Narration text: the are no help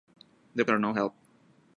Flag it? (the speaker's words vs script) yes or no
no